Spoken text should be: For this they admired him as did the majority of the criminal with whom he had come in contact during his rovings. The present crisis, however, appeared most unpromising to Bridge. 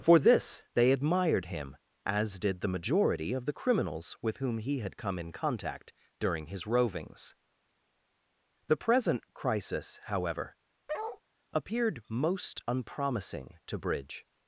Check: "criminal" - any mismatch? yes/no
yes